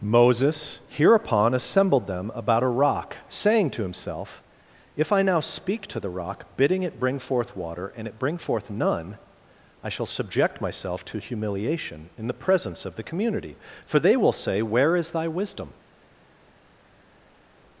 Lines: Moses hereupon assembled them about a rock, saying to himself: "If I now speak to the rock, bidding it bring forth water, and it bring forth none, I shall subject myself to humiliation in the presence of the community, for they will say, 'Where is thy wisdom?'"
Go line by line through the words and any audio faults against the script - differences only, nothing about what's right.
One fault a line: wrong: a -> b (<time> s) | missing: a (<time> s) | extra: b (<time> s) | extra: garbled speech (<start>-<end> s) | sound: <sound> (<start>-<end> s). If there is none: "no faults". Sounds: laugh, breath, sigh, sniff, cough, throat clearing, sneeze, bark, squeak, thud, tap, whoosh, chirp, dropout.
no faults